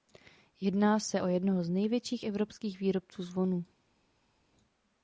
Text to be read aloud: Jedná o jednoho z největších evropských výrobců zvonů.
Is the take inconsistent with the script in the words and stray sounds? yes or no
yes